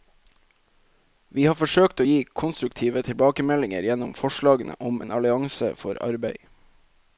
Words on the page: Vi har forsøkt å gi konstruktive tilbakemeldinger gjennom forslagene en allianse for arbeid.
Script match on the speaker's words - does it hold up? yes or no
no